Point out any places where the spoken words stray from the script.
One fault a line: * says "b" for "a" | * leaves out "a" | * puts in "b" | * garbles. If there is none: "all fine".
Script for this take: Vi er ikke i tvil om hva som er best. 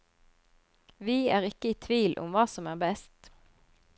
all fine